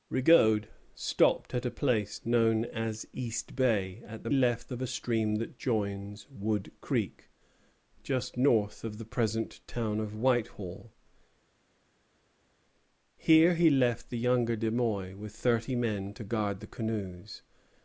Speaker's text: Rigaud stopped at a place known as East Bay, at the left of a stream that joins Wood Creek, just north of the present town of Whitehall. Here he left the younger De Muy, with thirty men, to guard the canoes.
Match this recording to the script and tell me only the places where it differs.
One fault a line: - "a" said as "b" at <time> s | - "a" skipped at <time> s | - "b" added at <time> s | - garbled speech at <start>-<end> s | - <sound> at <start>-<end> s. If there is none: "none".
none